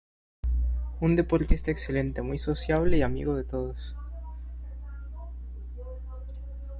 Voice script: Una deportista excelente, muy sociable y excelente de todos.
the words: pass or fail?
fail